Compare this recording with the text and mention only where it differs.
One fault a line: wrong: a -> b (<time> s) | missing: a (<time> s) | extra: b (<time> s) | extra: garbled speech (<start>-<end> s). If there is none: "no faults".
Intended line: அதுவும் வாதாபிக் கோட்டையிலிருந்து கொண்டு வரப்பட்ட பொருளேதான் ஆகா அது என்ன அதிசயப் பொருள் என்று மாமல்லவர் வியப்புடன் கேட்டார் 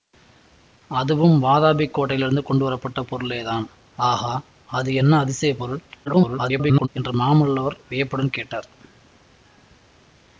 extra: garbled speech (6.1-6.9 s)